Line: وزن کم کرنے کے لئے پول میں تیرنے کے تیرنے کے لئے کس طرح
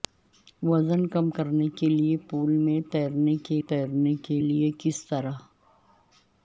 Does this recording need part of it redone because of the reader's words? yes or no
no